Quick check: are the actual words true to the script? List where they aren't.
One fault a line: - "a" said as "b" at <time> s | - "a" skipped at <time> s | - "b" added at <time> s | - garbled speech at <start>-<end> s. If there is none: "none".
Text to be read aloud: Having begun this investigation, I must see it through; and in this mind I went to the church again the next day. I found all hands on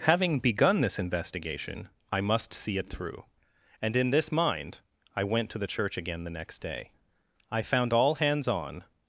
none